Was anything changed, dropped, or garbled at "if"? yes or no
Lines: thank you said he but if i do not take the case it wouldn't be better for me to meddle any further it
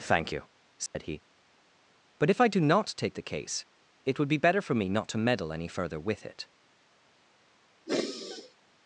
no